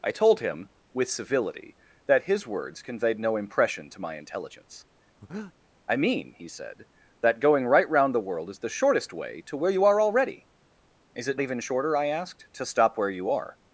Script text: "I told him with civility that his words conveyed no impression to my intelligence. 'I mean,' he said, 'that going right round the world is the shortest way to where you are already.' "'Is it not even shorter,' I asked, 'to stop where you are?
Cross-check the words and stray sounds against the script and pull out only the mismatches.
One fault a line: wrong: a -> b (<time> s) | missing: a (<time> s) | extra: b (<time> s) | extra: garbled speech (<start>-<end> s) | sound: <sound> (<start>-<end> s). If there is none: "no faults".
sound: breath (5.2-5.5 s)
missing: not (11.4 s)